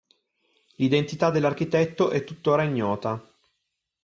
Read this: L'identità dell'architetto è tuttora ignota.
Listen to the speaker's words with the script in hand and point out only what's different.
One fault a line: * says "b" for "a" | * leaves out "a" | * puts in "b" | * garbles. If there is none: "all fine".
all fine